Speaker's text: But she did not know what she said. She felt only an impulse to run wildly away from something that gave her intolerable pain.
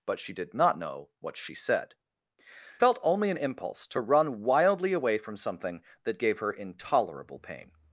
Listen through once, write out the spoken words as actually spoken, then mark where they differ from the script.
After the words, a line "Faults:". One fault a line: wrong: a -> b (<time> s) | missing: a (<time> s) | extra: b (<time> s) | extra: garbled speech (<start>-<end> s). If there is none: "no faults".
But she did not know what she said. Felt only an impulse to run wildly away from something that gave her intolerable pain.
Faults:
missing: She (1.9 s)